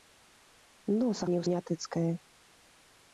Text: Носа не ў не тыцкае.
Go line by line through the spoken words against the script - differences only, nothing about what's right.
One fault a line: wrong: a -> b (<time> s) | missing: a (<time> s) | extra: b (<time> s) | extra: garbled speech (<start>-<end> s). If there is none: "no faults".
no faults